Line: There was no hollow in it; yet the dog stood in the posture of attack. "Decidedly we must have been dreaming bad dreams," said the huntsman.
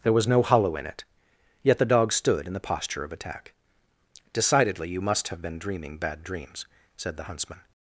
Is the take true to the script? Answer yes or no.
no